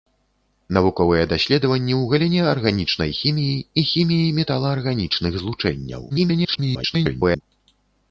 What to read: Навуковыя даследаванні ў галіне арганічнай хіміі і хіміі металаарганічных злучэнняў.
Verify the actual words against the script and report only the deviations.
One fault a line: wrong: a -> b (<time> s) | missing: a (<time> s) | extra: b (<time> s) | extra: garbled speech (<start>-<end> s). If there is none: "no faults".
extra: garbled speech (6.1-7.4 s)